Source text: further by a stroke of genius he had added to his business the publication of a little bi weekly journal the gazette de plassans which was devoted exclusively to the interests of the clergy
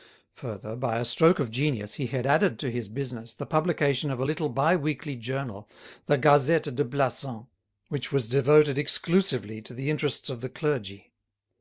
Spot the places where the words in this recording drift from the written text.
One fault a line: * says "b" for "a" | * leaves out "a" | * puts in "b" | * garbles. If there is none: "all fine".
all fine